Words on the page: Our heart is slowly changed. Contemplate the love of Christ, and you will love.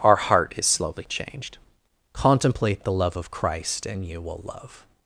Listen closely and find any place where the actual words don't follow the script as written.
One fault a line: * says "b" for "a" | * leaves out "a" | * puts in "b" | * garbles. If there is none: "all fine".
all fine